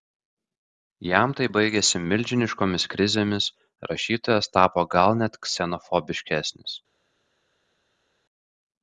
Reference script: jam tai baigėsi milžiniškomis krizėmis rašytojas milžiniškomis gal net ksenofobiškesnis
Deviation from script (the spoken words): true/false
true